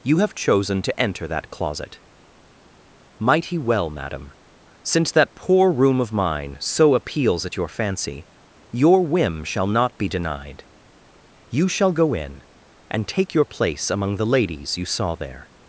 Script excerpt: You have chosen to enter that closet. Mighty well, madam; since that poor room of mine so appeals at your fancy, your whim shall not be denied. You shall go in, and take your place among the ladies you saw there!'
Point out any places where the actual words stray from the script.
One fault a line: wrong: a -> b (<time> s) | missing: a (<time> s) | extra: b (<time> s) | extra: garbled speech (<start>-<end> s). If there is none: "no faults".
no faults